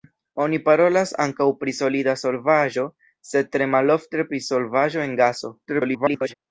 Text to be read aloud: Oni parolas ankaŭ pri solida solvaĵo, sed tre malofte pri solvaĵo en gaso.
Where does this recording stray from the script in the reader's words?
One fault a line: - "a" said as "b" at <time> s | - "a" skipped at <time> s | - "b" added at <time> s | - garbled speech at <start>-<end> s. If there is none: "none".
- garbled speech at 5.7-6.3 s